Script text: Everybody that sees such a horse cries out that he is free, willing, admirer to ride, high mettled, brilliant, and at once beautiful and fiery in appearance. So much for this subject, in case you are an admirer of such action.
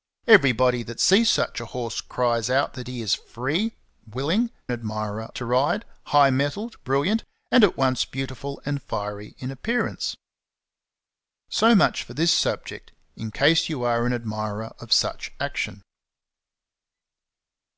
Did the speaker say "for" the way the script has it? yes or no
yes